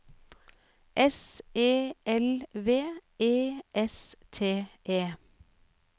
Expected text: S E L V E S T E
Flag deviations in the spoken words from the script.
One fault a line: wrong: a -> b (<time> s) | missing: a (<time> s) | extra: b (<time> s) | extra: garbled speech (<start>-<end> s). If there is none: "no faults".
no faults